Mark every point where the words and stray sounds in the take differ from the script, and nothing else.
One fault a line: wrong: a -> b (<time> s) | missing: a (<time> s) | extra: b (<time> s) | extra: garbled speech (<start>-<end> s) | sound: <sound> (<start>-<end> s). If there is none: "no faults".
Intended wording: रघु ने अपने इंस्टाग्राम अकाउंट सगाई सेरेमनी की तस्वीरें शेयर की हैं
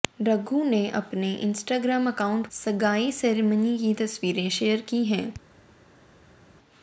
no faults